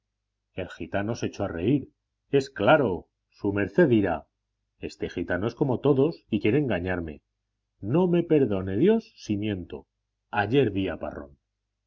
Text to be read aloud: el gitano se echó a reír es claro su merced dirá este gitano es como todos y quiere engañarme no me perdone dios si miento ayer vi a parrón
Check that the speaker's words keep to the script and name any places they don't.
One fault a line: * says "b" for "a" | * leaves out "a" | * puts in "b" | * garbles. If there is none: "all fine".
all fine